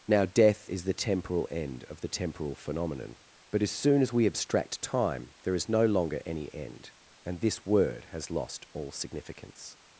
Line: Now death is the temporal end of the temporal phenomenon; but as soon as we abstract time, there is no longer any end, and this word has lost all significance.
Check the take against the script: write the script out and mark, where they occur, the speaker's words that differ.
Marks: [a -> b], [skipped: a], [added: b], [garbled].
Now death is the temporal end of the temporal phenomenon; but as soon as we abstract time, there is no longer any end, and this word has lost all significance.